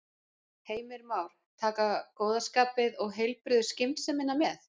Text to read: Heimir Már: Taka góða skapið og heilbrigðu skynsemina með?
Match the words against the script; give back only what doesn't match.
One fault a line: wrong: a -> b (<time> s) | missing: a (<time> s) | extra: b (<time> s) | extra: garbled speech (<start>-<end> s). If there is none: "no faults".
no faults